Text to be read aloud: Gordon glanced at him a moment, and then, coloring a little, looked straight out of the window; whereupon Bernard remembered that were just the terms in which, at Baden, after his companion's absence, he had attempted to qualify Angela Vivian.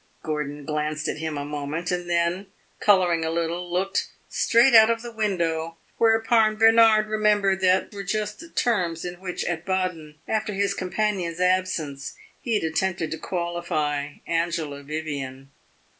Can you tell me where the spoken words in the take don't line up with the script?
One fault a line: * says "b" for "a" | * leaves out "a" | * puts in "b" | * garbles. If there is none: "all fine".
all fine